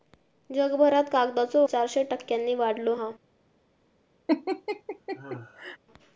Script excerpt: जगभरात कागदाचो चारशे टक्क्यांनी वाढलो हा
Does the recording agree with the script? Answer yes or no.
yes